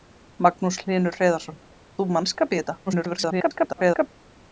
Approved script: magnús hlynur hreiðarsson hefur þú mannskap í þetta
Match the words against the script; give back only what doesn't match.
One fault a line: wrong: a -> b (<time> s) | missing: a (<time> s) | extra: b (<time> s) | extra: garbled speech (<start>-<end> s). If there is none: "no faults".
missing: hefur (1.6 s)
extra: garbled speech (2.9-4.1 s)